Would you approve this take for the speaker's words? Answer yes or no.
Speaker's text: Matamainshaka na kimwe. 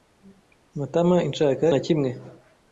yes